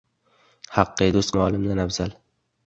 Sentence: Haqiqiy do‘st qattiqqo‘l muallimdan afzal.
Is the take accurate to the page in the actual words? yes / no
no